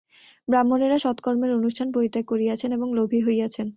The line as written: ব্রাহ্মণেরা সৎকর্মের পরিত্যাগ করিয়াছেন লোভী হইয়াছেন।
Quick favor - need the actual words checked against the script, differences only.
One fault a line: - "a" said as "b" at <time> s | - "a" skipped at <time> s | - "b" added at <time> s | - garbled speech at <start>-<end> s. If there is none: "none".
- "অনুষ্ঠান" added at 1.5 s
- "এবং" added at 2.7 s